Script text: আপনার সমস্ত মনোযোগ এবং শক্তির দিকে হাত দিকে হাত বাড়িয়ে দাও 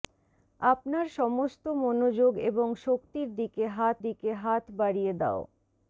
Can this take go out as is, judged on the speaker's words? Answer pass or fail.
pass